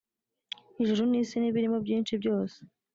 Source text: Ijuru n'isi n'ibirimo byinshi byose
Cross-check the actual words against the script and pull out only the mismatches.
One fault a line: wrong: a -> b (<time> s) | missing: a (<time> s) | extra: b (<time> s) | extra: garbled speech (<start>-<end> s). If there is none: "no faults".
no faults